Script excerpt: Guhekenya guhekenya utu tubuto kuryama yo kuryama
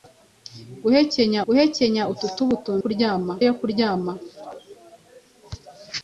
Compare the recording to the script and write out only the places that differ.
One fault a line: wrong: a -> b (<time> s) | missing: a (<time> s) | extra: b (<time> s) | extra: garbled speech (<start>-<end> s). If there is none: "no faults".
no faults